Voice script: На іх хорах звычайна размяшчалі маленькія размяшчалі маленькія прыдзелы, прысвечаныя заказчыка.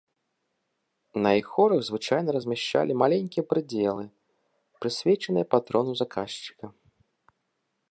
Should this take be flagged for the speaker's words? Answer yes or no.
yes